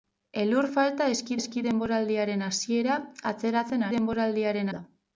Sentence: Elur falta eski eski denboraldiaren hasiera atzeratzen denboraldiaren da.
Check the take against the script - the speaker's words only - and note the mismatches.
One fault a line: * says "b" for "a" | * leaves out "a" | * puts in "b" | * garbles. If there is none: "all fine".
all fine